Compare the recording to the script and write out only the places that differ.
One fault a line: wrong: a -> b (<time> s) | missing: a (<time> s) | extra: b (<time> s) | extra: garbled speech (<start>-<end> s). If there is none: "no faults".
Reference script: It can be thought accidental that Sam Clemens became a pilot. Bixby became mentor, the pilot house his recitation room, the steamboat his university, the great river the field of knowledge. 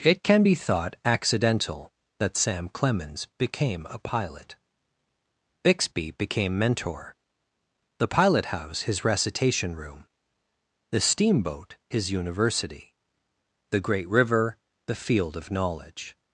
no faults